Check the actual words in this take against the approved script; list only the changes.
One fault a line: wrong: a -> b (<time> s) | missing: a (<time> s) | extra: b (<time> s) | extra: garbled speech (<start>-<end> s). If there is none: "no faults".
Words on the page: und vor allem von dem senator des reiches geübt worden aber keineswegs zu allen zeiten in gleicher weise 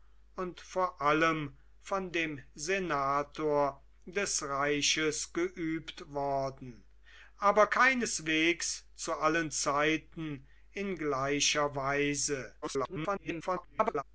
extra: garbled speech (12.6-14.0 s)